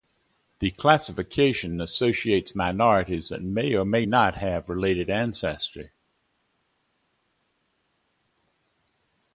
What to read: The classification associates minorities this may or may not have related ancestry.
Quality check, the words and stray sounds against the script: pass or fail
fail